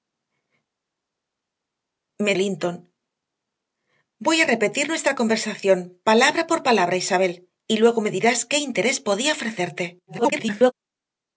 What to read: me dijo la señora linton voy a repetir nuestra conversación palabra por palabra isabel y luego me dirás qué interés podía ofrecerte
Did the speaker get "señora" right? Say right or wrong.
wrong